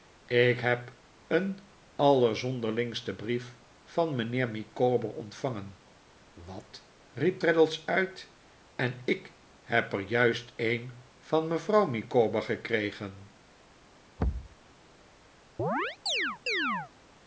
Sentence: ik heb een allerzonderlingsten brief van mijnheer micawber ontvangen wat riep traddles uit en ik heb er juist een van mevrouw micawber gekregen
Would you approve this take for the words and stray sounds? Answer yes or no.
no